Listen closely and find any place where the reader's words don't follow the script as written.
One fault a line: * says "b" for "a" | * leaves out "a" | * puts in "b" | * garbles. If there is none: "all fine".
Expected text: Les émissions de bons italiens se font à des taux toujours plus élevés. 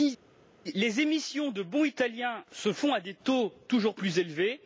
all fine